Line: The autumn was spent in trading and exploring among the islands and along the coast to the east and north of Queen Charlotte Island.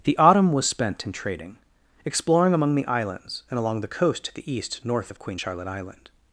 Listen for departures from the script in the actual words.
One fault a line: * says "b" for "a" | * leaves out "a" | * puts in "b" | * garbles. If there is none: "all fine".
* leaves out "and"
* leaves out "and"